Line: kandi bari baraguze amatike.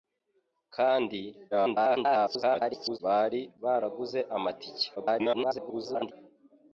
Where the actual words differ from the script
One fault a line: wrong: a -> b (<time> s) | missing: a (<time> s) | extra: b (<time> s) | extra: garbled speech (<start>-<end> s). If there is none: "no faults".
extra: garbled speech (1.5-3.0 s)
extra: garbled speech (5.0-6.1 s)